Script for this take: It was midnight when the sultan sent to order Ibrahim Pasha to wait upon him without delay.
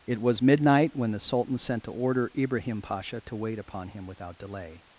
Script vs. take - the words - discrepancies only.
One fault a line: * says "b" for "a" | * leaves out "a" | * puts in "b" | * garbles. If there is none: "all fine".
all fine